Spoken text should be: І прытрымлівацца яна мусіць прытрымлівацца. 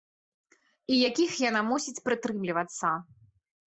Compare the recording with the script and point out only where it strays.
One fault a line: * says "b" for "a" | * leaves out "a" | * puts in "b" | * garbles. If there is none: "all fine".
* says "якіх" for "прытрымлівацца"